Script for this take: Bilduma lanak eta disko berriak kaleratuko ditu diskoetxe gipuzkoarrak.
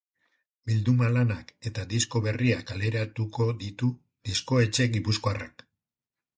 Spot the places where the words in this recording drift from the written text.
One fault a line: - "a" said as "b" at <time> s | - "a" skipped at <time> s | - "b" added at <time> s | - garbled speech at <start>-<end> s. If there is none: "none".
none